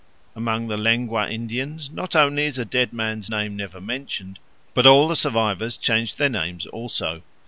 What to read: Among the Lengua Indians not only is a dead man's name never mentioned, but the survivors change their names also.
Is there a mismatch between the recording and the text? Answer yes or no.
yes